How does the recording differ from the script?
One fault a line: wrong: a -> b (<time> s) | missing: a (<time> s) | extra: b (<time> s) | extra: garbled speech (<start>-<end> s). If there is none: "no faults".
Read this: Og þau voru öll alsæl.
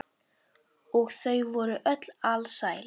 no faults